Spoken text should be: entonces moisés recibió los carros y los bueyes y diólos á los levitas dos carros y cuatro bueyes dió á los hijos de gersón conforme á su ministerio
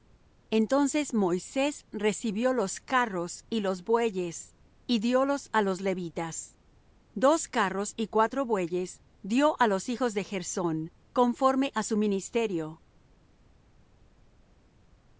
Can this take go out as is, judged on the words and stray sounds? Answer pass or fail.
pass